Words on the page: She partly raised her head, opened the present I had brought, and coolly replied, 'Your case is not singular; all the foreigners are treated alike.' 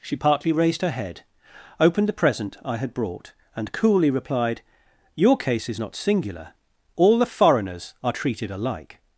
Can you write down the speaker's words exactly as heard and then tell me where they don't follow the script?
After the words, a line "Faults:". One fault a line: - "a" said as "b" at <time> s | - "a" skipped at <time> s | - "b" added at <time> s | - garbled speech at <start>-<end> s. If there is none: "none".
She partly raised her head, opened the present I had brought, and coolly replied, 'Your case is not singular; all the foreigners are treated alike.'
Faults:
none